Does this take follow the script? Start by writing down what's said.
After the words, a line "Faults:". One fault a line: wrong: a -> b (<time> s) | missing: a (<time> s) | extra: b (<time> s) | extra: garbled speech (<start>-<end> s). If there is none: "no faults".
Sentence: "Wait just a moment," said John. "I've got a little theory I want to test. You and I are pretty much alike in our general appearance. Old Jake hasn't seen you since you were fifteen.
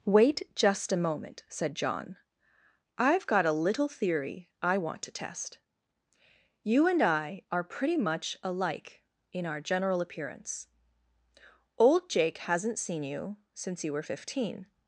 "Wait just a moment," said John. "I've got a little theory I want to test. You and I are pretty much alike in our general appearance. Old Jake hasn't seen you since you were fifteen.
Faults:
no faults